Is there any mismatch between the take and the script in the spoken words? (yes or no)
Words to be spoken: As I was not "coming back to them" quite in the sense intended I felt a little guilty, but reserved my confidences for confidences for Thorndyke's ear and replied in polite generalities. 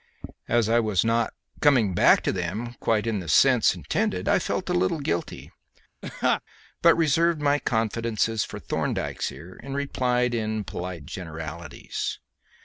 yes